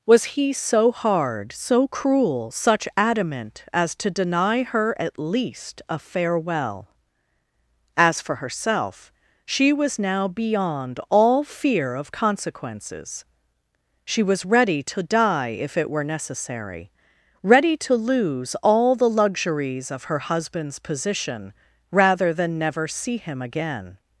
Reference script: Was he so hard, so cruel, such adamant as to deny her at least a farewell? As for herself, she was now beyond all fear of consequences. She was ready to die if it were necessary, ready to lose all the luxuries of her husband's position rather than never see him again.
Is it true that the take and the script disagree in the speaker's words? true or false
false